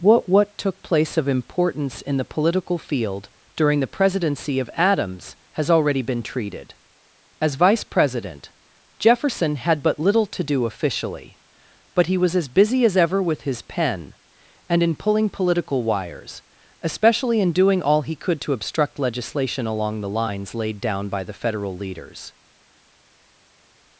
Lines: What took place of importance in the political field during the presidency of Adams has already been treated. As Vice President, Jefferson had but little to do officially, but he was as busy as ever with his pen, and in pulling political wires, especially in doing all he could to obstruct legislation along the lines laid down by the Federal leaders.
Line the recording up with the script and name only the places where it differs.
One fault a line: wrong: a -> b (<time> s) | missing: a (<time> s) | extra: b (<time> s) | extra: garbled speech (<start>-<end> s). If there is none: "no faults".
extra: what (0.3 s)